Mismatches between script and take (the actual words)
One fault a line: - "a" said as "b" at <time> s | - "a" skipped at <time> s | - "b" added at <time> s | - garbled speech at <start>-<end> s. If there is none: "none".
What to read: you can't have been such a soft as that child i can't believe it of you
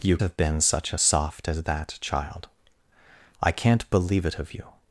- "can't" skipped at 0.2 s